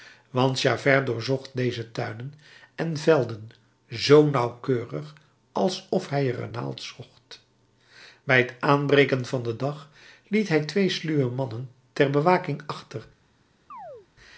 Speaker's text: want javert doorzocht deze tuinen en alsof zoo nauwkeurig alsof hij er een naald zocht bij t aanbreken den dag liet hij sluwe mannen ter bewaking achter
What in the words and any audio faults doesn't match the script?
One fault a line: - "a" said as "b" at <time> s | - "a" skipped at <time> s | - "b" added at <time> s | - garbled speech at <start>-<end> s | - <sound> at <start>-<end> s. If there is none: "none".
- "alsof" said as "velden" at 3.0 s
- "van" added at 9.3 s
- "twee" added at 10.6 s
- chirp at 13.7-14.1 s